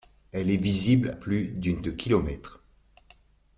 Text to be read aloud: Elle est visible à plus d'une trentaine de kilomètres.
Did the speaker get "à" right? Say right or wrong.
wrong